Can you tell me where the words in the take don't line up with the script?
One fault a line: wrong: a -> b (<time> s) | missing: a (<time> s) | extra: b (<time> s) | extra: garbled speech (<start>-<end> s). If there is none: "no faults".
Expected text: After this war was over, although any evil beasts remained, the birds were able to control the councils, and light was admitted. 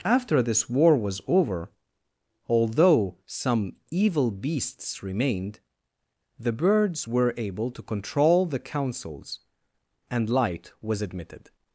wrong: any -> some (3.2 s)